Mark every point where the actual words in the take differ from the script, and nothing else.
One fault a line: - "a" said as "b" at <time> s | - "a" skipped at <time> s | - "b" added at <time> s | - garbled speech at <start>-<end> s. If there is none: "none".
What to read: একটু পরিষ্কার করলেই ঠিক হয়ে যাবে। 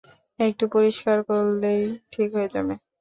none